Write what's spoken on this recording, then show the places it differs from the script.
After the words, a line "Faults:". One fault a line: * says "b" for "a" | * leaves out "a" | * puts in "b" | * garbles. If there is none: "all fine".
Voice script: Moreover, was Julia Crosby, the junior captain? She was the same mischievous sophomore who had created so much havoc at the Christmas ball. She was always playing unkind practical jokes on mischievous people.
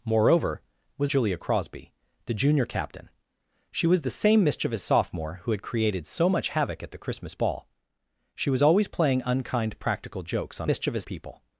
Moreover, was Julia Crosby, the junior captain? She was the same mischievous sophomore who had created so much havoc at the Christmas ball. She was always playing unkind practical jokes on mischievous people.
Faults:
all fine